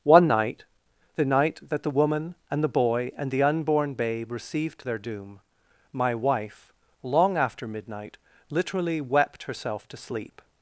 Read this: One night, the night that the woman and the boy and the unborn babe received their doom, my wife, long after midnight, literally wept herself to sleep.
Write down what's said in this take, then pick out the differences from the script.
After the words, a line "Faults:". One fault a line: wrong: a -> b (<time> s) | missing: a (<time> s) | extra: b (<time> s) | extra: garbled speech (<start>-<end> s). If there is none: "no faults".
One night, the night that the woman and the boy and the unborn babe received their doom, my wife, long after midnight, literally wept herself to sleep.
Faults:
no faults